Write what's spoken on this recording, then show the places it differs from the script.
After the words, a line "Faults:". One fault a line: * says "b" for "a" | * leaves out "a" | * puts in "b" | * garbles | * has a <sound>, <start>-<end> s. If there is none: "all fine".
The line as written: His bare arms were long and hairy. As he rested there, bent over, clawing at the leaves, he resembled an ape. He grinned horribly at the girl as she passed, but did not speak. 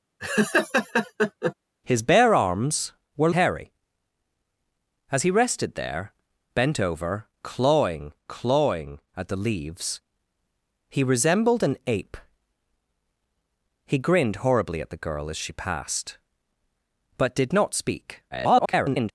His bare arms were hairy. As he rested there, bent over, clawing clawing at the leaves, he resembled an ape. He grinned horribly at the girl as she passed, but did not speak. [garbled]
Faults:
* has a laugh, 0.2-1.5 s
* leaves out "long and"
* puts in "clawing"
* garbles